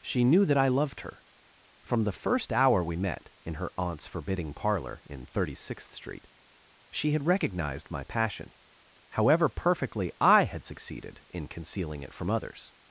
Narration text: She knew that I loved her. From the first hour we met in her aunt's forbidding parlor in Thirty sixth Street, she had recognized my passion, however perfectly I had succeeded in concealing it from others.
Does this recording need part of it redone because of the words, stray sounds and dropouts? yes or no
no